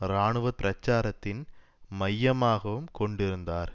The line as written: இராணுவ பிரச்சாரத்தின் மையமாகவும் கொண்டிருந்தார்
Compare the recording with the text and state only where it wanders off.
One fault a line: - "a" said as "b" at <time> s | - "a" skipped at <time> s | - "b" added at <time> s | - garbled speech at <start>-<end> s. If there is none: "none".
none